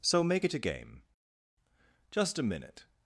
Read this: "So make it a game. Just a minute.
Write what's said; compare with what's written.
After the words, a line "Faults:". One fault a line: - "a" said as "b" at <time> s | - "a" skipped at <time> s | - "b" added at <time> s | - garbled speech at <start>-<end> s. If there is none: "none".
"So make it a game. Just a minute.
Faults:
none